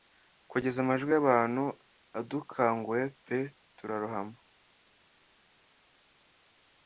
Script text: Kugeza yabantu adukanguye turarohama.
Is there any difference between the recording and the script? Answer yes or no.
yes